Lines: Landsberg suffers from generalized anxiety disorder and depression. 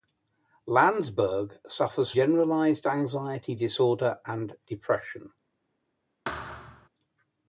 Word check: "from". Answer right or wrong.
wrong